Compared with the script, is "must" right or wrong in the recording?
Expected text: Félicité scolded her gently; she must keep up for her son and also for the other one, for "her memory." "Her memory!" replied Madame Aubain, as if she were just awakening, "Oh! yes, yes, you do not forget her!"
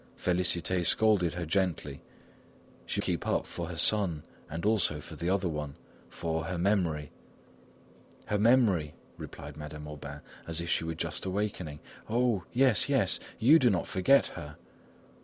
wrong